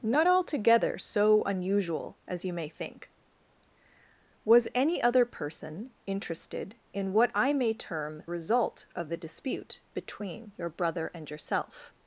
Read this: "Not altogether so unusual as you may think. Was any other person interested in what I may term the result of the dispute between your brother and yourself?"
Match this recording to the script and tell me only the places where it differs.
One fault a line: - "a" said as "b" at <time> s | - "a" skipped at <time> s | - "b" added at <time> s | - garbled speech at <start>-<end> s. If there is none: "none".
- "the" skipped at 8.2 s